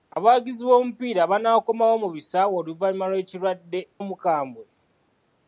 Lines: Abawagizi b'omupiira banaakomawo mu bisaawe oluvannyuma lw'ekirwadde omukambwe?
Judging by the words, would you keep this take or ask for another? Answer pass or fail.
pass